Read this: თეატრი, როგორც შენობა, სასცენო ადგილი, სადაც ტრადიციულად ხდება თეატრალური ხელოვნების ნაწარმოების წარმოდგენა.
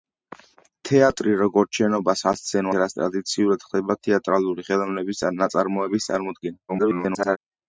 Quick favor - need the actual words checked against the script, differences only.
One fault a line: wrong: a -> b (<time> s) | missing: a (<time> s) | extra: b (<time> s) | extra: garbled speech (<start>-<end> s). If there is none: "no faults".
missing: ადგილი (2.7 s)
extra: garbled speech (6.7-7.4 s)